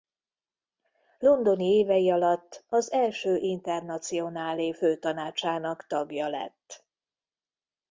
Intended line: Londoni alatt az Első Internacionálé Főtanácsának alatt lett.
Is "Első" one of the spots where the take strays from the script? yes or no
no